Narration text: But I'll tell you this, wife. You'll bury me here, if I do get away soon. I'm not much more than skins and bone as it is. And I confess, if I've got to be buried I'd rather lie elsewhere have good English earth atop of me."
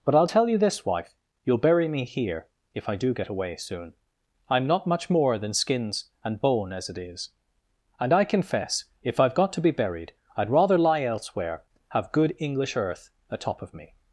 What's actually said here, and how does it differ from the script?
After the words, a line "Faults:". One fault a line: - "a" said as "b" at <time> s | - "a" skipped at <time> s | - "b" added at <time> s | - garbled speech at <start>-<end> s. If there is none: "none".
But I'll tell you this, wife. You'll bury me here, if I do get away soon. I'm not much more than skins and bone as it is. And I confess, if I've got to be buried I'd rather lie elsewhere have good English earth atop of me."
Faults:
none